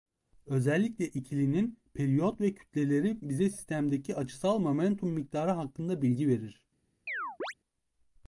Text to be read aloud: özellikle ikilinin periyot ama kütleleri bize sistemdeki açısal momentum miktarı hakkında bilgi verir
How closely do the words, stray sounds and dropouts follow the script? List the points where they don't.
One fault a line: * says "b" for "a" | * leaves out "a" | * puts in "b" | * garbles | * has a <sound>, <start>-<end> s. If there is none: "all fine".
* says "ve" for "ama"
* has a chirp, 7.1-7.5 s